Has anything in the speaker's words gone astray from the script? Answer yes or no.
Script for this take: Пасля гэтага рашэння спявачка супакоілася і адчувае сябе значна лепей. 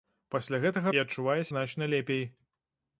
yes